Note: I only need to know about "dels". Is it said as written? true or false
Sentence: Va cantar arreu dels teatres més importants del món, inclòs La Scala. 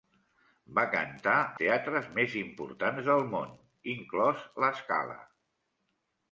false